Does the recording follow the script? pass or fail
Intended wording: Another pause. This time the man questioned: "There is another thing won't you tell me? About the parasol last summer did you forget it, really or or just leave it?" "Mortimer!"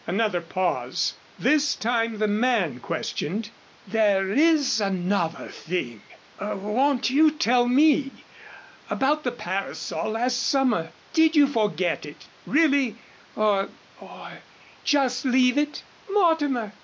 pass